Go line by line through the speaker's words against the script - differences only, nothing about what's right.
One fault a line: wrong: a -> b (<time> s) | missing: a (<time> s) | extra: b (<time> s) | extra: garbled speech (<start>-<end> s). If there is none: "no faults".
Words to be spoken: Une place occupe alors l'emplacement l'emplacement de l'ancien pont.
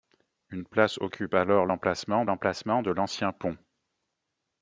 no faults